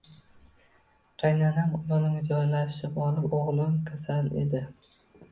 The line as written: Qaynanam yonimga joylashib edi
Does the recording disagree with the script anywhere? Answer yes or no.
yes